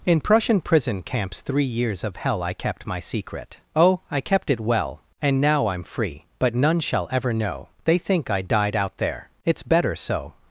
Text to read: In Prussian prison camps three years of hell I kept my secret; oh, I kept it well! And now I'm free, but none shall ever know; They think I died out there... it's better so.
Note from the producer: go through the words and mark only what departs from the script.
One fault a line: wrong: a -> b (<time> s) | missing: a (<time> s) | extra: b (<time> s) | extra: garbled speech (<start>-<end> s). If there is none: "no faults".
no faults